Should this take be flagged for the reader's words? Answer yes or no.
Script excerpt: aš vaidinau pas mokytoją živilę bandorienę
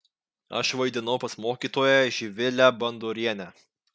no